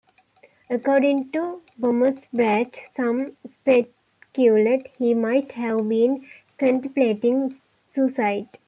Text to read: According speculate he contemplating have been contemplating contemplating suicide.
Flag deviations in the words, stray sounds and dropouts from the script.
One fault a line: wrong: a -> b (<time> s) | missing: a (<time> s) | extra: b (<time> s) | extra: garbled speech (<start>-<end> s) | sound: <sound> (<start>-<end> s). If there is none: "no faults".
extra: to Bommersbach some (1.3 s)
wrong: contemplating -> might (5.1 s)
missing: contemplating (7.6 s)